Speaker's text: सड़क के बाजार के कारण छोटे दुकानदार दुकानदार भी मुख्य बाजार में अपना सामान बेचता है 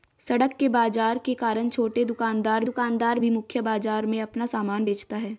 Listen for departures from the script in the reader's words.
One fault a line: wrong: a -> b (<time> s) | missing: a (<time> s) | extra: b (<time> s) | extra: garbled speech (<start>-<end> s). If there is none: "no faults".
no faults